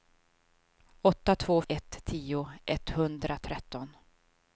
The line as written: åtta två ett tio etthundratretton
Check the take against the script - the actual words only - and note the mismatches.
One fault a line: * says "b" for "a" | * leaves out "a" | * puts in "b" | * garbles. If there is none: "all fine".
all fine